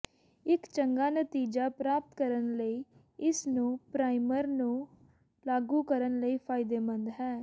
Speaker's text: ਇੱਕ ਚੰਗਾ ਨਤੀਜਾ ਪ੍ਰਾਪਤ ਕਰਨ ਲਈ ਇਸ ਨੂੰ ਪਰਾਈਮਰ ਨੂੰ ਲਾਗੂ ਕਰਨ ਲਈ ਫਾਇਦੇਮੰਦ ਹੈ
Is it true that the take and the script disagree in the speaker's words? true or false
false